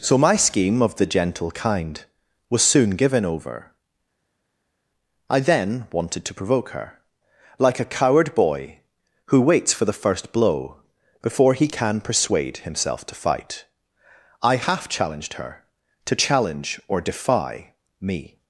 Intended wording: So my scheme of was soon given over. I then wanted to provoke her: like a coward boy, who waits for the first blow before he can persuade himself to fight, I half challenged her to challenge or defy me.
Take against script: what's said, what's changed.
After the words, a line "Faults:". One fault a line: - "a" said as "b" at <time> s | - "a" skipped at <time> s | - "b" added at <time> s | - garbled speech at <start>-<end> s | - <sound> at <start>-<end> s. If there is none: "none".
So my scheme of the gentle kind was soon given over. I then wanted to provoke her: like a coward boy, who waits for the first blow before he can persuade himself to fight, I half challenged her to challenge or defy me.
Faults:
- "the gentle kind" added at 0.9 s